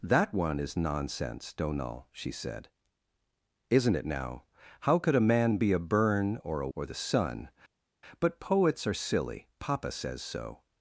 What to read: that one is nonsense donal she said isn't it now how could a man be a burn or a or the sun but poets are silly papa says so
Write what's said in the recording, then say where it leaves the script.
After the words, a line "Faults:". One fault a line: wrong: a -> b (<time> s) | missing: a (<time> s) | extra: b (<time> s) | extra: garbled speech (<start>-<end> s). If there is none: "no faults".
that one is nonsense donal she said isn't it now how could a man be a burn or a or the sun but poets are silly papa says so
Faults:
no faults